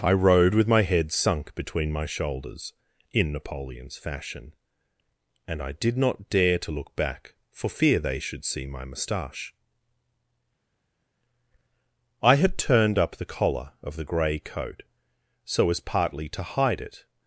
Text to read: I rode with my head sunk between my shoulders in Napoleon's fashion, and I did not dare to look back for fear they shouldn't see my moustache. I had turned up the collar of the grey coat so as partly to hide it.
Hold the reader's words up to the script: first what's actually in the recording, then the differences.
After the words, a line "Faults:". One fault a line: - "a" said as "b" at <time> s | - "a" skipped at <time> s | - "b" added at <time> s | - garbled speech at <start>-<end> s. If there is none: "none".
I rode with my head sunk between my shoulders in Napoleon's fashion, and I did not dare to look back for fear they should see my moustache. I had turned up the collar of the grey coat so as partly to hide it.
Faults:
- "shouldn't" said as "should" at 8.2 s